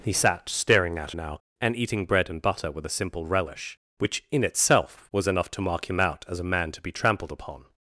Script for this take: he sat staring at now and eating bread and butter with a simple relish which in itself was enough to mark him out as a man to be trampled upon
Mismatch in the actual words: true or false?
false